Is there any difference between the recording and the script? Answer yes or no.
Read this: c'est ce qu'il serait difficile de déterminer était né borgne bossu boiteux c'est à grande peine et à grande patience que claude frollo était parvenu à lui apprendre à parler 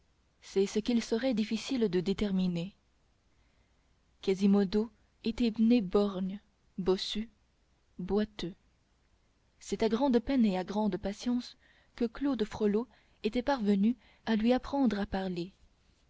yes